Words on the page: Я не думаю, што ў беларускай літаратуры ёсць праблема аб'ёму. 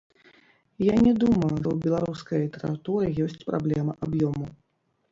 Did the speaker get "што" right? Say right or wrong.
wrong